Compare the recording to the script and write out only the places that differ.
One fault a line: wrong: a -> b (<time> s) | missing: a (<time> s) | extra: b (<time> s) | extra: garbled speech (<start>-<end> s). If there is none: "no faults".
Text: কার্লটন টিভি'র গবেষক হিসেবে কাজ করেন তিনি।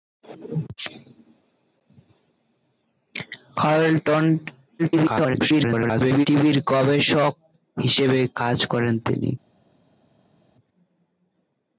extra: garbled speech (4.8-6.3 s)